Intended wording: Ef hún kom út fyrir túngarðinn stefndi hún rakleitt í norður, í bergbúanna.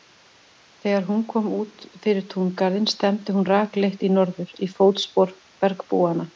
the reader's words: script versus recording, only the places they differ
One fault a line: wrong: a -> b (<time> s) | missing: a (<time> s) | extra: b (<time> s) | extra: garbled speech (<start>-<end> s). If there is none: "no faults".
wrong: Ef -> Þegar (0.8 s)
extra: fótspor (4.8 s)